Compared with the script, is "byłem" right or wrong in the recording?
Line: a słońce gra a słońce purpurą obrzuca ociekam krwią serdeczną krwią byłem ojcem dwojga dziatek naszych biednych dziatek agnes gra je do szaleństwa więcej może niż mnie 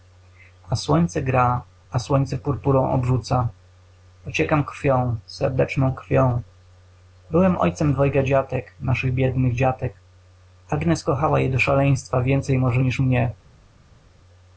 right